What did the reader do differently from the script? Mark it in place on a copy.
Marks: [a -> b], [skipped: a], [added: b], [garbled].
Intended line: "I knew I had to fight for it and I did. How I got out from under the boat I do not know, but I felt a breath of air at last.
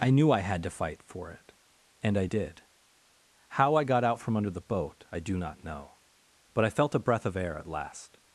"I knew I had to fight for it and I did. How I got out from under the boat I do not know, but I felt a breath of air at last.